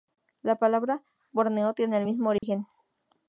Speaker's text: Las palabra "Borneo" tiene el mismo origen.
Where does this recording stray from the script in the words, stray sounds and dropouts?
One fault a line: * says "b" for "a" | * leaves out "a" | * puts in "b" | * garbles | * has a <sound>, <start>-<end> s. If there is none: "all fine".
* says "La" for "Las"
* has a dropout, 2.4-2.4 s